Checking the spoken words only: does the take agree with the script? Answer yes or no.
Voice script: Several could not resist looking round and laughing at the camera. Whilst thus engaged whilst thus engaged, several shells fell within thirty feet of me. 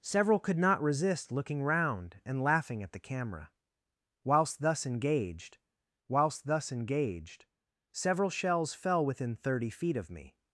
yes